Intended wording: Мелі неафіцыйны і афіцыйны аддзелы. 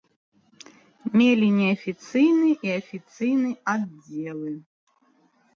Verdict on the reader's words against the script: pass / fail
pass